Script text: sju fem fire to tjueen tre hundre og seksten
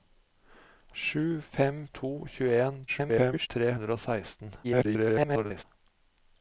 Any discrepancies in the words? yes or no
yes